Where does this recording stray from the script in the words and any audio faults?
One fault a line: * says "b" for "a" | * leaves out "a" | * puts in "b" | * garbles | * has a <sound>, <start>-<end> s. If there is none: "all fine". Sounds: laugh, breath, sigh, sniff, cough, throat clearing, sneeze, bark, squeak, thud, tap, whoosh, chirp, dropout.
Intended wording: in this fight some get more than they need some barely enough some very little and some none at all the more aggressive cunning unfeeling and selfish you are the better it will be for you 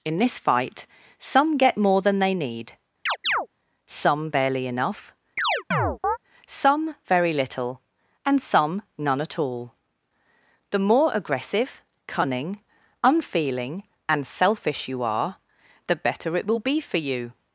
* has a chirp, 3.1-3.5 s
* has a chirp, 5.4-6.2 s